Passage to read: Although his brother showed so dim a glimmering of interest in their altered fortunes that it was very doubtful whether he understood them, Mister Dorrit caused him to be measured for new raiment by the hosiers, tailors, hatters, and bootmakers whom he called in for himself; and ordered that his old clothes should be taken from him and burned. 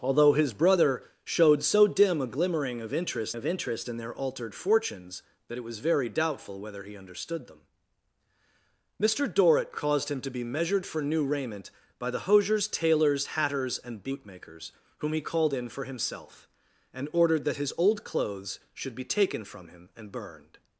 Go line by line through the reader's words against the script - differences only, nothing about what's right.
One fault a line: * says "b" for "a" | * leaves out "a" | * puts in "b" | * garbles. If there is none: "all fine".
* puts in "of interest"